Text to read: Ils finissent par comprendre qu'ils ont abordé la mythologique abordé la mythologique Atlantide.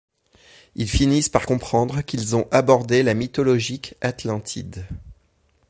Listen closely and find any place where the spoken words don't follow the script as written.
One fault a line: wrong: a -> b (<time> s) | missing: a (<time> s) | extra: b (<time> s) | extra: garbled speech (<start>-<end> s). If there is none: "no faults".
missing: abordé la mythologique (3.9 s)